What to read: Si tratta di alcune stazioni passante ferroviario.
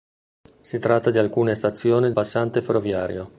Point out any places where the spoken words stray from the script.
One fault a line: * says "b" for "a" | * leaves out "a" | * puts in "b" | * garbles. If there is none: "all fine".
all fine